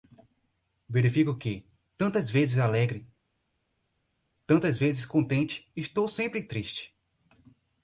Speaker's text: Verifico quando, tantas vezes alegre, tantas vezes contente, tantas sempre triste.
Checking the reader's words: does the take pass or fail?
fail